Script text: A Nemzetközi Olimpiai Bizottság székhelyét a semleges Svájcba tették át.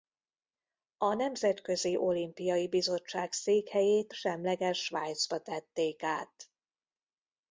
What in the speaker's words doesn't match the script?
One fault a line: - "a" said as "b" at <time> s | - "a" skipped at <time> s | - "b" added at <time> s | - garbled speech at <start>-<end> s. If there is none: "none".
- "a" skipped at 4.1 s